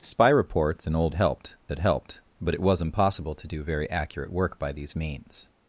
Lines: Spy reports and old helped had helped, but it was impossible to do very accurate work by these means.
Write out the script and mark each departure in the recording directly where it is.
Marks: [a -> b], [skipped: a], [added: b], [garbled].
Spy reports and old helped had helped, but it was impossible to do very accurate work by these means.